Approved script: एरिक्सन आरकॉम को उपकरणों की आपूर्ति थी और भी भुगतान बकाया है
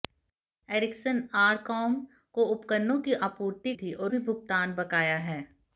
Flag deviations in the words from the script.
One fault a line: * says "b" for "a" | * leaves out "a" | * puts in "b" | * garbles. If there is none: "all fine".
all fine